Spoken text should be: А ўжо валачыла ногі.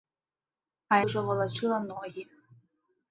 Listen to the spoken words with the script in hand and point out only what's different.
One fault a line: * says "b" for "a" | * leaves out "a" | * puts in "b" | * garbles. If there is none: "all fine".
all fine